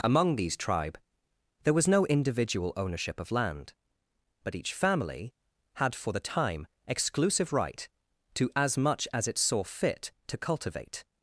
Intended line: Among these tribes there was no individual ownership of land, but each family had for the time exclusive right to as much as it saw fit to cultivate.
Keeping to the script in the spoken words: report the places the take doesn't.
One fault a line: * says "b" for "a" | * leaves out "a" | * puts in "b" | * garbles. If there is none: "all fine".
* says "tribe" for "tribes"